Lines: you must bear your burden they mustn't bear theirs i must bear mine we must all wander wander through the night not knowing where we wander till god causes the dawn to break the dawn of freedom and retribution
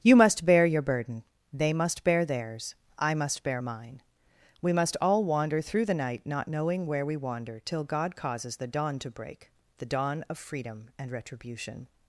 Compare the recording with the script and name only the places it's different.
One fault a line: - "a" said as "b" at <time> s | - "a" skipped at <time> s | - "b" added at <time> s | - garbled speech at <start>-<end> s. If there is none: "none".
- "mustn't" said as "must" at 1.7 s
- "wander" skipped at 5.6 s